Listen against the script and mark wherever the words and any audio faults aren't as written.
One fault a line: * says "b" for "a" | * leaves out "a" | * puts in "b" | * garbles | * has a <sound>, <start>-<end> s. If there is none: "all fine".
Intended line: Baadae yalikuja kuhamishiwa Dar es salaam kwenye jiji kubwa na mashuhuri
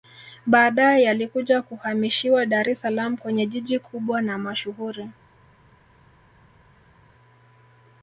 all fine